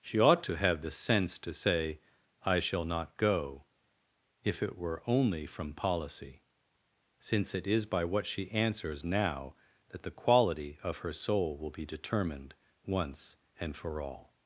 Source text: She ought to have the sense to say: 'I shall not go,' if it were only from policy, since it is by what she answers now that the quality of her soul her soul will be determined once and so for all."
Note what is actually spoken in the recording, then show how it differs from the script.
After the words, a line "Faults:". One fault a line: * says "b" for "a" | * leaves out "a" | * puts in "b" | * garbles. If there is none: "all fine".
She ought to have the sense to say: 'I shall not go,' if it were only from policy, since it is by what she answers now that the quality of her soul will be determined once and for all."
Faults:
* leaves out "her soul"
* leaves out "so"